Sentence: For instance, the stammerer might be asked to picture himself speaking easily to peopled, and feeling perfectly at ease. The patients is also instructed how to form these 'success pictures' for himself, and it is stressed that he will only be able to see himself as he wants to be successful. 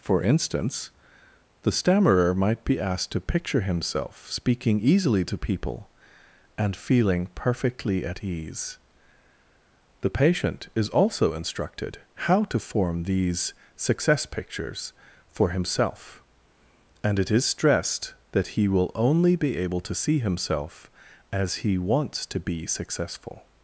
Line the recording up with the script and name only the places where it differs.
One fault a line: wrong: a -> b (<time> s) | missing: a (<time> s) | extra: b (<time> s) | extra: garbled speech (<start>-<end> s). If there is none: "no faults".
wrong: peopled -> people (5.4 s)
wrong: patients -> patient (10.1 s)